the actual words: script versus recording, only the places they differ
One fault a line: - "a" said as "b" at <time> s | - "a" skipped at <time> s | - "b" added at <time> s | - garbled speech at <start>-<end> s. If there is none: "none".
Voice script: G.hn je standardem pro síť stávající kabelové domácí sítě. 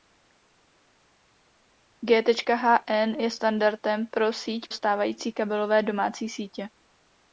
none